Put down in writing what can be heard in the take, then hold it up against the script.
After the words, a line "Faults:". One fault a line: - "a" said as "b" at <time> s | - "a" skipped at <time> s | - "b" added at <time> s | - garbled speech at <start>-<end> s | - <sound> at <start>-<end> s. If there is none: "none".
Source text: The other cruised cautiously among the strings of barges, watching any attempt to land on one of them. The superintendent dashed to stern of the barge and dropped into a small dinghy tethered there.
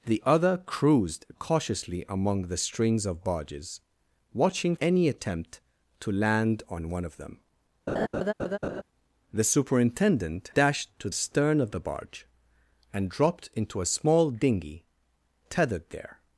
The other cruised cautiously among the strings of barges, watching any attempt to land on one of them. The superintendent dashed to stern of the barge and dropped into a small dinghy tethered there.
Faults:
- laugh at 7.9-8.8 s